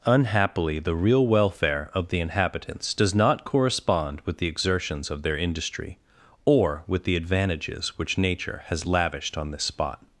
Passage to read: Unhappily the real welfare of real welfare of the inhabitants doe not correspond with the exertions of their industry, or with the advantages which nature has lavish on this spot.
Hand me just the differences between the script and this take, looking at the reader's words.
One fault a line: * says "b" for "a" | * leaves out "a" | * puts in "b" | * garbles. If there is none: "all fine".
* leaves out "real welfare of"
* says "does" for "doe"
* says "lavished" for "lavish"